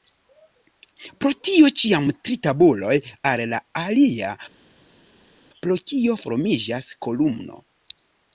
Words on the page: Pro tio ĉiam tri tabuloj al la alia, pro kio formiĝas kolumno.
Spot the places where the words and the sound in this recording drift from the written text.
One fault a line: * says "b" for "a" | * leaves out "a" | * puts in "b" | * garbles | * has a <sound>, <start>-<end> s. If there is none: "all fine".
all fine